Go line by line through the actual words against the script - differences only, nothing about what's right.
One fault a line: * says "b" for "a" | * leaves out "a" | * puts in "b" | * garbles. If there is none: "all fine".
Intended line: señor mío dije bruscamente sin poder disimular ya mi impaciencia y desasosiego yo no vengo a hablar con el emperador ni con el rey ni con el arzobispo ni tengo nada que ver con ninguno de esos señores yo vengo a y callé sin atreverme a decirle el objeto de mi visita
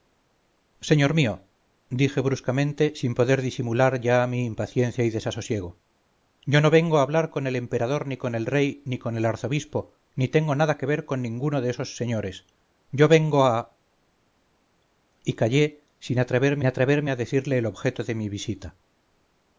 * puts in "atreverme"